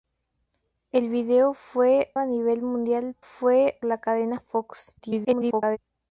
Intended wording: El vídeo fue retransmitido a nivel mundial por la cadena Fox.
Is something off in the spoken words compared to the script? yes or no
yes